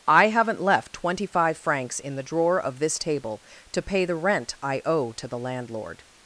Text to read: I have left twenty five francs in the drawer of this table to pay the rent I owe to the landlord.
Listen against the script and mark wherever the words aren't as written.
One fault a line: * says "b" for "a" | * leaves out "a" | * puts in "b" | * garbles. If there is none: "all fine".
* says "haven't" for "have"